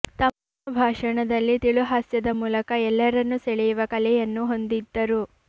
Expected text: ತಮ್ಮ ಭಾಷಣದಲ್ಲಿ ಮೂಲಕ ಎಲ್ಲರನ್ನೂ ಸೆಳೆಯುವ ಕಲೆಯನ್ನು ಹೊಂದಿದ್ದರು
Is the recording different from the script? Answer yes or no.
yes